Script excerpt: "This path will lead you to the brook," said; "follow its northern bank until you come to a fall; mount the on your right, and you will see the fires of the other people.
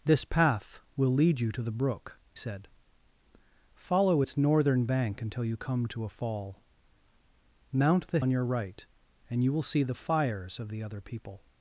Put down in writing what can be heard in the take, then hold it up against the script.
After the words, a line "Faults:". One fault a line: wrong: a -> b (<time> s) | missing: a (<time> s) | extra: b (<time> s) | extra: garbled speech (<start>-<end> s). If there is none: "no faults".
"This path will lead you to the brook," said; "follow its northern bank until you come to a fall; mount the on your right, and you will see the fires of the other people.
Faults:
no faults